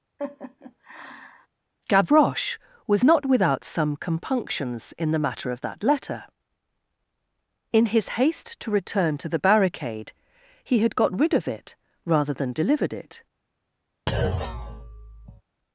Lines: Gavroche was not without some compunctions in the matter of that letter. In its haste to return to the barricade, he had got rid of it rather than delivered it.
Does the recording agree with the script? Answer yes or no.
no